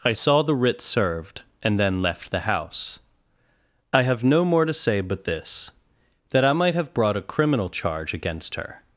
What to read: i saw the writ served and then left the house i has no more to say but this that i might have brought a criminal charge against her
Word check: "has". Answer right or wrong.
wrong